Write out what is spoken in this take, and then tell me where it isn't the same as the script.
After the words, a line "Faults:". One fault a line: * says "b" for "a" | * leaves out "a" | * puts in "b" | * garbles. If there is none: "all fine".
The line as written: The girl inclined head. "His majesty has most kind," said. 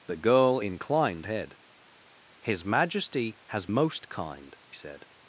The girl inclined head. "His majesty has most kind," said.
Faults:
all fine